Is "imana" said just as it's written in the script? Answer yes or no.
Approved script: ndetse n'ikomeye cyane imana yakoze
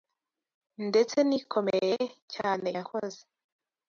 no